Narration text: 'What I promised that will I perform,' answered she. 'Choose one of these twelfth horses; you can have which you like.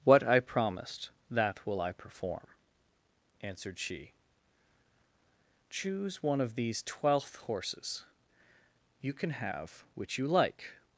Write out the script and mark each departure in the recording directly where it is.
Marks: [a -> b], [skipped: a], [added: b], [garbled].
'What I promised that will I perform,' answered she. 'Choose one of these twelfth horses; you can have which you like.